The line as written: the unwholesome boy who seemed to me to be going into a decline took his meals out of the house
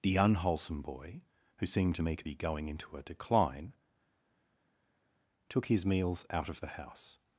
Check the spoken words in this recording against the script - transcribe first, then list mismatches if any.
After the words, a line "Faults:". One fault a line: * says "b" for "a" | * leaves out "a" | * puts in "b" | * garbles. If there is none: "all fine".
the unwholesome boy who seemed to me to be going into a decline took his meals out of the house
Faults:
all fine